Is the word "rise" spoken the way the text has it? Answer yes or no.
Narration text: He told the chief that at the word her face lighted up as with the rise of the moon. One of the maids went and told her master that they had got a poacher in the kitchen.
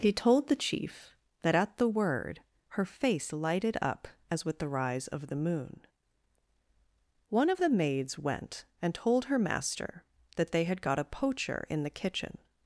yes